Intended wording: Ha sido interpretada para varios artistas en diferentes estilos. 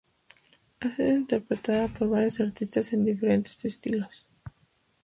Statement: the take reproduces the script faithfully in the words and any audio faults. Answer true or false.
false